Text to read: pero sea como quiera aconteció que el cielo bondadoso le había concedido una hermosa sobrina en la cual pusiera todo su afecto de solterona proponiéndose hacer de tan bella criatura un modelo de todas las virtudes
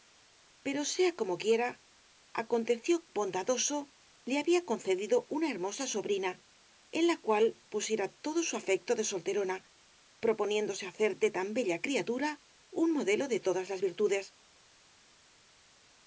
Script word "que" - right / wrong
wrong